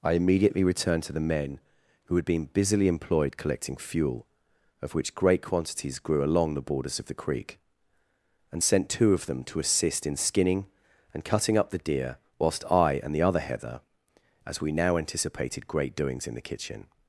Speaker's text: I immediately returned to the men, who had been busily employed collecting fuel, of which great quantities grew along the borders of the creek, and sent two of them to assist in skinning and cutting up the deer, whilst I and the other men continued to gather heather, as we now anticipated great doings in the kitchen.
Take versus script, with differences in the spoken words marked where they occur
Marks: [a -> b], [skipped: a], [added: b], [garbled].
I immediately returned to the men, who had been busily employed collecting fuel, of which great quantities grew along the borders of the creek, and sent two of them to assist in skinning and cutting up the deer, whilst I and the other [skipped: men continued to gather] heather, as we now anticipated great doings in the kitchen.